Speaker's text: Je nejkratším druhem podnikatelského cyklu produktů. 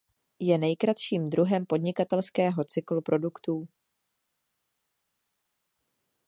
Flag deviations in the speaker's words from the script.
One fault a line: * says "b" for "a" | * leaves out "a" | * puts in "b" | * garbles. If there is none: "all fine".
all fine